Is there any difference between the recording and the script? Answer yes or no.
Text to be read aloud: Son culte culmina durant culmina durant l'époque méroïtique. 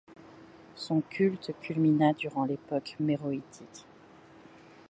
yes